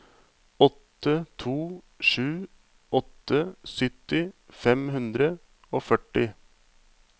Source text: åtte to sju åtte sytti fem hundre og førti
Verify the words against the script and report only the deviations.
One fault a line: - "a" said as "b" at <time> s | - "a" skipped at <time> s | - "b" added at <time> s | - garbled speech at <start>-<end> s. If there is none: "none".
none